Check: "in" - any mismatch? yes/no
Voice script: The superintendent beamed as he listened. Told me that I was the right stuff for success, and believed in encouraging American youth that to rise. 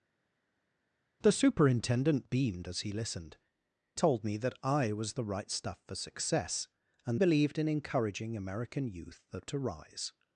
no